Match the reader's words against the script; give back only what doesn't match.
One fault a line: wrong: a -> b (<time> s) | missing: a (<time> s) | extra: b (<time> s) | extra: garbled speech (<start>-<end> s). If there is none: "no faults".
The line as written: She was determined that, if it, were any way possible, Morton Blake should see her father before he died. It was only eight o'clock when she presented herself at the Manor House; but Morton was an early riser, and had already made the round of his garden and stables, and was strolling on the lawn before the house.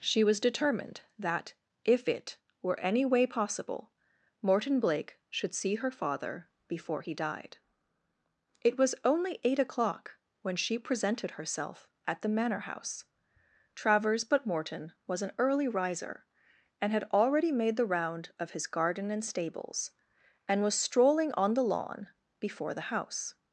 extra: travers (13.7 s)